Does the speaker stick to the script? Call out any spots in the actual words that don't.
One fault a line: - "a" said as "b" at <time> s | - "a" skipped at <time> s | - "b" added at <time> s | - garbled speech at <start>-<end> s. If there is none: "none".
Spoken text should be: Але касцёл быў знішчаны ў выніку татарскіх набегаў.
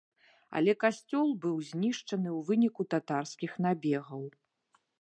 none